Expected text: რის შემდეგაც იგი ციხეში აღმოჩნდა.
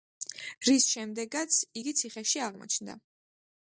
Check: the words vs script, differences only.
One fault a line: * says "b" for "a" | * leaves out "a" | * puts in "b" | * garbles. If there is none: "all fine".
all fine